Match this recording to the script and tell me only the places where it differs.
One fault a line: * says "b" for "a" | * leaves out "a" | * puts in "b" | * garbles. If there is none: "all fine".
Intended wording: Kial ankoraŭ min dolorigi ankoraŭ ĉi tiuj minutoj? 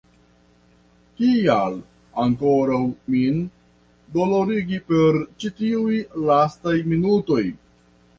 * says "per" for "ankoraŭ"
* puts in "lastaj"